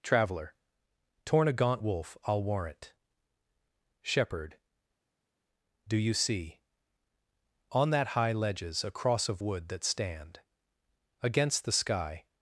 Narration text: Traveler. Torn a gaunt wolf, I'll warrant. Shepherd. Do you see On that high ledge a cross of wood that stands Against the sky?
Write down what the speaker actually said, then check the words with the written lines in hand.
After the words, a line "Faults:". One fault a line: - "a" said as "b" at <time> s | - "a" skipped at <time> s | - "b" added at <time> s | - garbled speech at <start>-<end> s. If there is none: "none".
Traveler. Torn a gaunt wolf, I'll warrant. Shepherd. Do you see On that high ledges a cross of wood that stand Against the sky?
Faults:
- "ledge" said as "ledges" at 8.3 s
- "stands" said as "stand" at 9.8 s